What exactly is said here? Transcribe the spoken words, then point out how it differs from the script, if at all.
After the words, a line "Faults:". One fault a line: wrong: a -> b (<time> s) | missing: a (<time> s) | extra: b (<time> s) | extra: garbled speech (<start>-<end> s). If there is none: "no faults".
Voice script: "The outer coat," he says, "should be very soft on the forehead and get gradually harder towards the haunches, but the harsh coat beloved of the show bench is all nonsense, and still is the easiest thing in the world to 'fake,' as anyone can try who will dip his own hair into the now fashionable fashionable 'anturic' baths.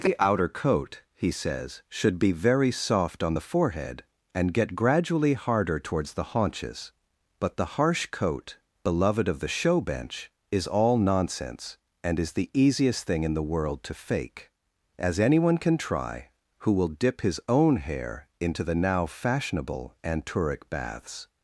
"The outer coat," he says, "should be very soft on the forehead and get gradually harder towards the haunches, but the harsh coat beloved of the show bench is all nonsense, and is the easiest thing in the world to 'fake,' as anyone can try who will dip his own hair into the now fashionable 'anturic' baths.
Faults:
missing: still (12.2 s)
missing: fashionable (19.9 s)